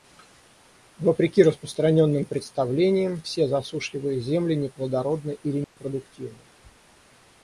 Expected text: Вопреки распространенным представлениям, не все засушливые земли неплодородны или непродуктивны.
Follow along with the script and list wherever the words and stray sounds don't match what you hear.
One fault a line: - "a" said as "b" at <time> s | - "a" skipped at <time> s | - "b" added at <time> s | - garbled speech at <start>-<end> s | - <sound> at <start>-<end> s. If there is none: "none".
- "не" skipped at 3.2 s
- dropout at 5.6-5.8 s